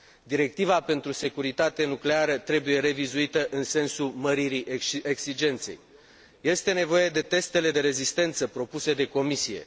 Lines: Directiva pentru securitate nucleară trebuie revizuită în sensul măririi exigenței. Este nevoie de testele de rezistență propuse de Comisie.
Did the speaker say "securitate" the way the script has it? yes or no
yes